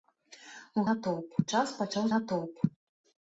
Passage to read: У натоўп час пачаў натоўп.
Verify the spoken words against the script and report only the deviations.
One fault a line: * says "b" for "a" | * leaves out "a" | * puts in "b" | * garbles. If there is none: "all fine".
all fine